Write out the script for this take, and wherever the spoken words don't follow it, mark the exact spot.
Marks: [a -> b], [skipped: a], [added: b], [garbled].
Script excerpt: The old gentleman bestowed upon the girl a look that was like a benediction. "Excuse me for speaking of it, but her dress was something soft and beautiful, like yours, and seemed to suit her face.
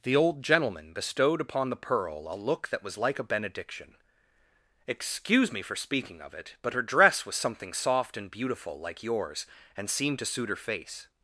The old gentleman bestowed upon the [girl -> pearl] a look that was like a benediction. "Excuse me for speaking of it, but her dress was something soft and beautiful, like yours, and seemed to suit her face.